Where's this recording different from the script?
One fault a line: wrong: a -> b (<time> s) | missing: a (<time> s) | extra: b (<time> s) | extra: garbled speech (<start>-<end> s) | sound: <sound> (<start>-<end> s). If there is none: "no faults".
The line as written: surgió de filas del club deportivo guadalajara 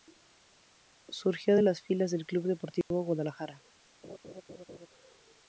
extra: las (1.6 s)
sound: dropout (2.8-2.9 s)
sound: laugh (4.0-4.9 s)